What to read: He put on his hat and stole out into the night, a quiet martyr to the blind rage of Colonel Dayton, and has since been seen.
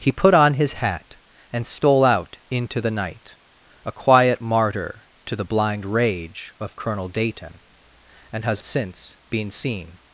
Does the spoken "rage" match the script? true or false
true